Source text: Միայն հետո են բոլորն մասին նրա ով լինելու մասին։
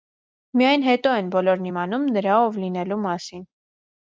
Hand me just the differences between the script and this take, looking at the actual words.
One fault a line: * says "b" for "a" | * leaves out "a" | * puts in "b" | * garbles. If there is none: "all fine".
* says "իմանում" for "մասին"